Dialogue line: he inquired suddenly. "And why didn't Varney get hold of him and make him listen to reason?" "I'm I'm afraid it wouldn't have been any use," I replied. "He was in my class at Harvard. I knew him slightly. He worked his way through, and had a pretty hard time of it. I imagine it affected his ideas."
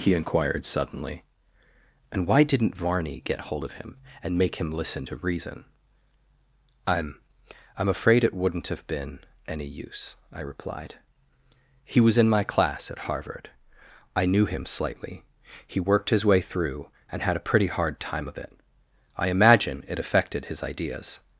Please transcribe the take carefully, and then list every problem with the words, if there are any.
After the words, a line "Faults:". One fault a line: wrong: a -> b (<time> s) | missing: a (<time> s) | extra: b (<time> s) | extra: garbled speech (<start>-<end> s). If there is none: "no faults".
he inquired suddenly. "And why didn't Varney get hold of him and make him listen to reason?" "I'm I'm afraid it wouldn't have been any use," I replied. "He was in my class at Harvard. I knew him slightly. He worked his way through, and had a pretty hard time of it. I imagine it affected his ideas."
Faults:
no faults